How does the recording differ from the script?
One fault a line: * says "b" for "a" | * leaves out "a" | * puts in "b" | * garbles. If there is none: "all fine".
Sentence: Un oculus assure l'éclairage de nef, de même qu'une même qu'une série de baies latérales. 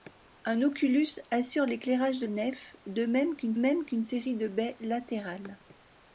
all fine